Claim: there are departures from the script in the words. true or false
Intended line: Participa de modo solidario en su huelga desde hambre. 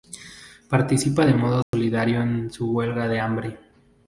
true